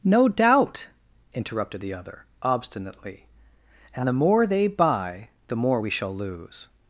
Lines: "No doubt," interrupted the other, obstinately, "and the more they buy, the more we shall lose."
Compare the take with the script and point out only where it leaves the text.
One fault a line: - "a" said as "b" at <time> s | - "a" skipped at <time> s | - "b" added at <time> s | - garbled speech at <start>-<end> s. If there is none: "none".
none